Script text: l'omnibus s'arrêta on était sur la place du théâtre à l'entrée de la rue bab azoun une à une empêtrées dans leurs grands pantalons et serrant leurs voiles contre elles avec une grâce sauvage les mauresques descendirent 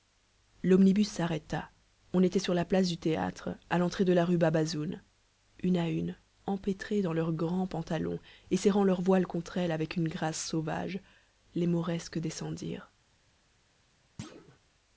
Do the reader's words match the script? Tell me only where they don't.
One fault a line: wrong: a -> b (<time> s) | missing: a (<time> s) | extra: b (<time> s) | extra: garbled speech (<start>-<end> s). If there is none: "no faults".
no faults